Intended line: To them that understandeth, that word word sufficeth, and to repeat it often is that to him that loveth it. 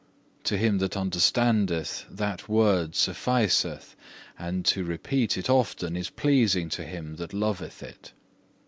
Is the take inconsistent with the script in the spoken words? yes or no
yes